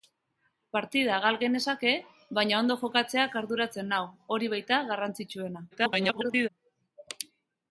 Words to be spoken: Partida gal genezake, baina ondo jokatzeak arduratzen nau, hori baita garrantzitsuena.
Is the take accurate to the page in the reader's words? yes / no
no